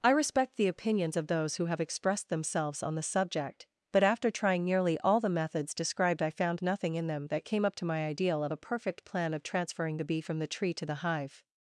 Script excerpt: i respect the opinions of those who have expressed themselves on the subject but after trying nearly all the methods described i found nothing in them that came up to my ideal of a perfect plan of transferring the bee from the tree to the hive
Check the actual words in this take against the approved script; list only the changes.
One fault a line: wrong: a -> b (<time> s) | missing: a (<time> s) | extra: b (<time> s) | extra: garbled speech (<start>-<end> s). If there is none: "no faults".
no faults